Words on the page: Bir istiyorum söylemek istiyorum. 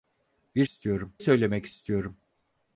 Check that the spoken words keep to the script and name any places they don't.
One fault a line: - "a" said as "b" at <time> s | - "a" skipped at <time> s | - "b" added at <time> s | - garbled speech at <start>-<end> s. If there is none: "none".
none